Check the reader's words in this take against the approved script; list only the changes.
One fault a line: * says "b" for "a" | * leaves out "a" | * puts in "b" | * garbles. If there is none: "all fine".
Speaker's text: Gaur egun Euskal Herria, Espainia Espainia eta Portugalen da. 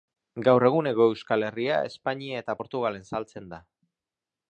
* puts in "Hego"
* leaves out "Espainia"
* puts in "saltzen"